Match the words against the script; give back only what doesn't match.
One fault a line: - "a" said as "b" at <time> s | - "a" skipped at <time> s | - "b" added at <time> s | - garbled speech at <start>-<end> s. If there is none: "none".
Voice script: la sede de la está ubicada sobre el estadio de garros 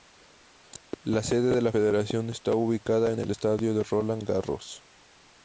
- "federación" added at 1.7 s
- "sobre" said as "en" at 3.1 s
- "roland" added at 3.8 s